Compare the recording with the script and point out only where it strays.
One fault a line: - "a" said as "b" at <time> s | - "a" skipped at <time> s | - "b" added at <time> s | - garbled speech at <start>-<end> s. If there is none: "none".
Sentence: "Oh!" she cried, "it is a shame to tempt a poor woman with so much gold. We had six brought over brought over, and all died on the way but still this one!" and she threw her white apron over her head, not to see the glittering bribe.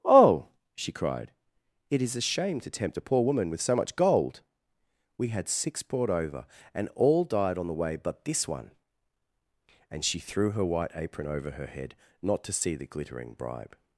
- "brought over" skipped at 6.5 s
- "still" skipped at 8.2 s